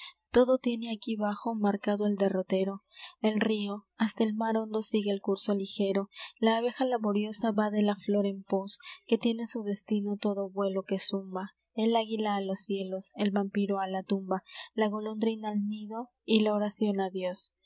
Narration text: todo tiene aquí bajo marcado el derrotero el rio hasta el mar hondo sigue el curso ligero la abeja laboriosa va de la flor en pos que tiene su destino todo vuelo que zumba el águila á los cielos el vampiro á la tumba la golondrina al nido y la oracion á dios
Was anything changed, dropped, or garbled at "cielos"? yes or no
no